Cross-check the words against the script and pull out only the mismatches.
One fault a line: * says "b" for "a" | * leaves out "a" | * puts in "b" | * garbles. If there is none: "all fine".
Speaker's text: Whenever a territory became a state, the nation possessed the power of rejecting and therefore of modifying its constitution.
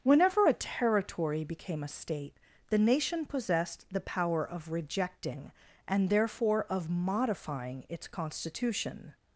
all fine